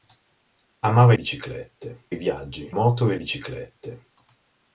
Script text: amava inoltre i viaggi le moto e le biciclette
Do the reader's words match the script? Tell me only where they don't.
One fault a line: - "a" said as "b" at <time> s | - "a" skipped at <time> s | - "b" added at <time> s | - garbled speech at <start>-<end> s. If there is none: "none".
- "inoltre" said as "biciclette" at 1.1 s
- "le" skipped at 2.8 s
- "le" skipped at 3.2 s